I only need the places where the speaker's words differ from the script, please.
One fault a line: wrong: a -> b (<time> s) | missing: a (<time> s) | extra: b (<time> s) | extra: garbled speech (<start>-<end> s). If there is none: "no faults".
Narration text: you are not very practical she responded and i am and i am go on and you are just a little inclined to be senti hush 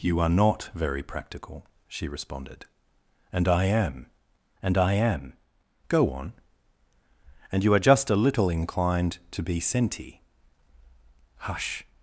no faults